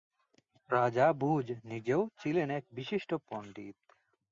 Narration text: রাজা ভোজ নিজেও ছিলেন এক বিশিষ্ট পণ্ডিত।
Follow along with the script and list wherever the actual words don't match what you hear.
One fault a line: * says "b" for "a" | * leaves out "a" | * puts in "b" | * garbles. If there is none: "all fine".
all fine